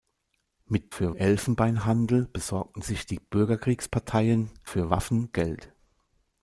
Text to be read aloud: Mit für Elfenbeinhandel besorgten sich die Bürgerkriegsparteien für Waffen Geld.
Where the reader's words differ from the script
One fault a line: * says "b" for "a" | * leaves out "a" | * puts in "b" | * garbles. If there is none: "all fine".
all fine